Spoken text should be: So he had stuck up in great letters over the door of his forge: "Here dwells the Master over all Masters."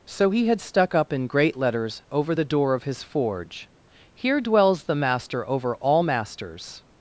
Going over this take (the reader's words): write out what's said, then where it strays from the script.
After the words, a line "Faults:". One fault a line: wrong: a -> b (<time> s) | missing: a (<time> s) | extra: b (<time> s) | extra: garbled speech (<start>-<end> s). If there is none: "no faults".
So he had stuck up in great letters over the door of his forge: "Here dwells the Master over all Masters."
Faults:
no faults